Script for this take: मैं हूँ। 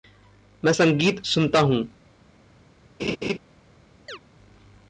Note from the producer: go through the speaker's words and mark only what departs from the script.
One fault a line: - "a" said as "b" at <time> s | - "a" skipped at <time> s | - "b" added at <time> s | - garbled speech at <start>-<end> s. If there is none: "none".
- "संगीत सुनता" added at 0.7 s